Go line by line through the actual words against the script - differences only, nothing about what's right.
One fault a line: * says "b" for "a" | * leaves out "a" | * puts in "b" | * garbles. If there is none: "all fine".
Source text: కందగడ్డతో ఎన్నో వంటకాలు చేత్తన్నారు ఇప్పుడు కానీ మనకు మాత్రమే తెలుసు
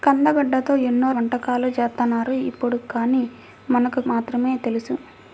all fine